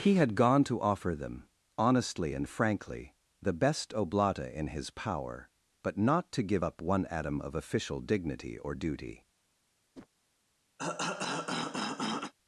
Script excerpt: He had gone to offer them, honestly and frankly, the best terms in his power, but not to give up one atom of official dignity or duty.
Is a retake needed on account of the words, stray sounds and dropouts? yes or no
yes